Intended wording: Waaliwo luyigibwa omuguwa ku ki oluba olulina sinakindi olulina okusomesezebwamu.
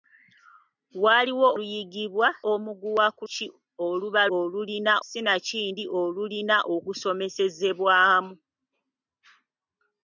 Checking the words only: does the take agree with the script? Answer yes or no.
yes